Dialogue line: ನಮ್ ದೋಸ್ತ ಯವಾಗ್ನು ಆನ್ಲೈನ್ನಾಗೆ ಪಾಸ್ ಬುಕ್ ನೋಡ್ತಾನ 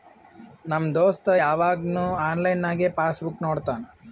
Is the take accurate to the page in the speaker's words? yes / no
yes